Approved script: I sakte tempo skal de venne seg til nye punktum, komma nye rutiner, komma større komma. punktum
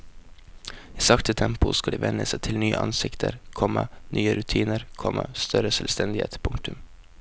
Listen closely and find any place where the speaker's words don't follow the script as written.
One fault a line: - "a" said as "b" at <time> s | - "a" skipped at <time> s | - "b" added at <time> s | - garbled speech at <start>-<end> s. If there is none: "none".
- "punktum" said as "ansikter" at 2.8 s
- "komma" said as "selvstendighet" at 5.7 s